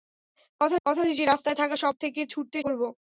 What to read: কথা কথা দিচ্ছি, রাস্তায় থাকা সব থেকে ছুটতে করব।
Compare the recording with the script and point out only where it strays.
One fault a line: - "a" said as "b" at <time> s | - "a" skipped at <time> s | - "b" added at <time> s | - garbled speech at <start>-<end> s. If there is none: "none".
none